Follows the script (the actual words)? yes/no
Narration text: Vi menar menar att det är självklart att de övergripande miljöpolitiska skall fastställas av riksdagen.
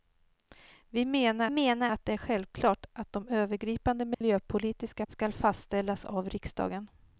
yes